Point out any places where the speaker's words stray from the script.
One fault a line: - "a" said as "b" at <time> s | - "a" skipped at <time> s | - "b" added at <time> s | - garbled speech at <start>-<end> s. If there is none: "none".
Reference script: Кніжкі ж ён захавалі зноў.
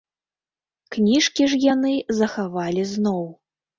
- "ён" said as "яны" at 1.7 s